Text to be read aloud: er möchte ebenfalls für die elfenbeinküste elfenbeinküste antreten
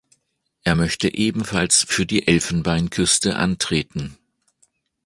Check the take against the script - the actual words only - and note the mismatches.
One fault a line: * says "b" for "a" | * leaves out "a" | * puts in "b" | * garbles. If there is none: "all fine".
* leaves out "elfenbeinküste"